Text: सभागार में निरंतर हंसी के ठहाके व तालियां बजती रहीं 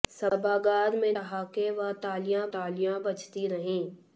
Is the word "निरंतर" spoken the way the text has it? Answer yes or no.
no